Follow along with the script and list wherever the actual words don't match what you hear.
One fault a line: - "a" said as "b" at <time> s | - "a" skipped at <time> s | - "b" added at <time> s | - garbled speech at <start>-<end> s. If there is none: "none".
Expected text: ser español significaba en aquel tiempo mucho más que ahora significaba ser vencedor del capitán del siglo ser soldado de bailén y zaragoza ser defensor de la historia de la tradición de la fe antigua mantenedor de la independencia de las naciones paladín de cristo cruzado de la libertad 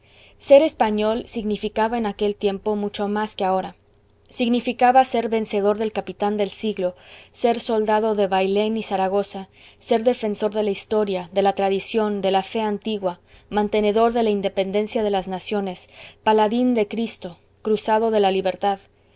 none